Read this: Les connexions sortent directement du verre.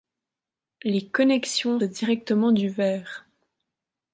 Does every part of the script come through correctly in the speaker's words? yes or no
no